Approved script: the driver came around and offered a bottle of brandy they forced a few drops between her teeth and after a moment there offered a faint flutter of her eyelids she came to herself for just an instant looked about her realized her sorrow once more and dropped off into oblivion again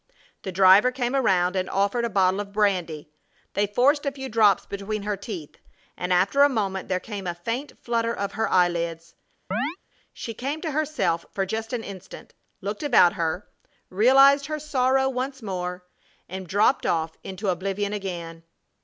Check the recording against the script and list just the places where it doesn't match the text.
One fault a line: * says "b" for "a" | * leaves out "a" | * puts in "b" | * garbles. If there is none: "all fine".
* says "came" for "offered"